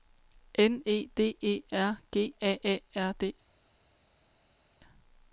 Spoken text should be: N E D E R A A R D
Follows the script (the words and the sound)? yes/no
no